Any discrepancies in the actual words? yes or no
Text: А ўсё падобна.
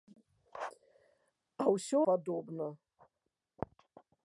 no